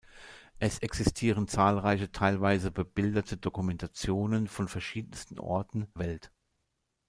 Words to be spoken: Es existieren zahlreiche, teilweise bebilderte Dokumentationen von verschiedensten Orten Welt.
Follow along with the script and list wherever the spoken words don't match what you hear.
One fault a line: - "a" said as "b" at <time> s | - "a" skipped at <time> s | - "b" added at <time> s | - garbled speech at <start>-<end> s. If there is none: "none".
none